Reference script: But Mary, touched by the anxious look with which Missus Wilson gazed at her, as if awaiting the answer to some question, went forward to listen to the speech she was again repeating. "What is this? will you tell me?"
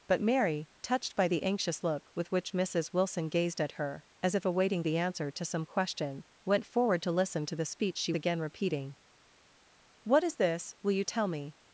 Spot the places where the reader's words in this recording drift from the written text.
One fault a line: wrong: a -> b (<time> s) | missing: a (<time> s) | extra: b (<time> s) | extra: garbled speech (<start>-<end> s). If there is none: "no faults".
missing: was (8.1 s)